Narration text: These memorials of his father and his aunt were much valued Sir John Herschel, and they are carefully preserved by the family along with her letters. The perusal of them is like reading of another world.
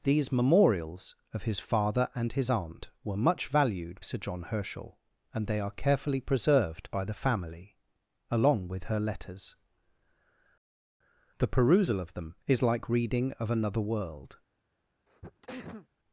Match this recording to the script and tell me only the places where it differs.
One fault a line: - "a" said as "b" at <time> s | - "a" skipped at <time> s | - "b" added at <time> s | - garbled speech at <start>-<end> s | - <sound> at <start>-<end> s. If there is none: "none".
- sneeze at 15.1-15.9 s